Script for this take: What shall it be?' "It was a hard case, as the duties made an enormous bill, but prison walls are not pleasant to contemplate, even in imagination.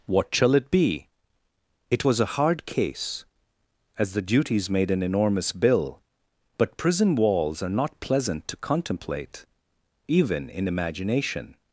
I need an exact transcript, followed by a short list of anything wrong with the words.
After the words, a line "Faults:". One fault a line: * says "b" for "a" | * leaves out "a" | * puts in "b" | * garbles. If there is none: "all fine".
What shall it be?' "It was a hard case, as the duties made an enormous bill, but prison walls are not pleasant to contemplate, even in imagination.
Faults:
all fine